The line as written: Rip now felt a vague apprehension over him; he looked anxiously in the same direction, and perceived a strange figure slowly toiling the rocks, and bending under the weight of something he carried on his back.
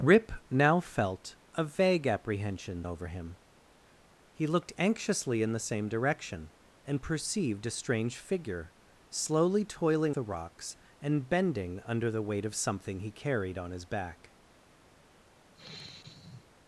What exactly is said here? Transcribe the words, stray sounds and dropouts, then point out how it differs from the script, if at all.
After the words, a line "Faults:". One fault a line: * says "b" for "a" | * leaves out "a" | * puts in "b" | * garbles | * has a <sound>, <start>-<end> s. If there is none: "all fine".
Rip now felt a vague apprehension over him; he looked anxiously in the same direction, and perceived a strange figure slowly toiling the rocks, and bending under the weight of something he carried on his back.
Faults:
* has a sigh, 15.5-16.5 s